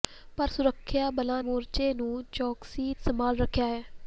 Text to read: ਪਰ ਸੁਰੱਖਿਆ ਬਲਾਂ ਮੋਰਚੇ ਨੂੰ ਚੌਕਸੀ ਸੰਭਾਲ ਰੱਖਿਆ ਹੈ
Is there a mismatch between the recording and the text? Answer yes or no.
no